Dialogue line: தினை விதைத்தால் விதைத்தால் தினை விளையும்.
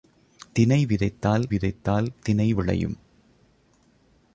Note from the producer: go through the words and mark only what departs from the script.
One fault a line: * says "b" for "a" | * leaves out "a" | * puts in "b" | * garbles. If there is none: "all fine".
all fine